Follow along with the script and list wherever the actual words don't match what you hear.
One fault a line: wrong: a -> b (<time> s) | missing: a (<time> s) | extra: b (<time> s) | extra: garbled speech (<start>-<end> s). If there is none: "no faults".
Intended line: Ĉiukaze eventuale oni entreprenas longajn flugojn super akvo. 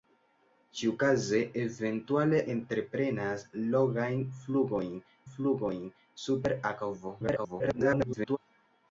missing: oni (2.4 s)
extra: flugojn (5.3 s)
extra: garbled speech (7.2-8.4 s)